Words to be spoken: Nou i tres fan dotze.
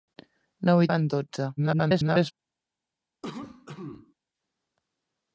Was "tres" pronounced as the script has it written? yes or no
no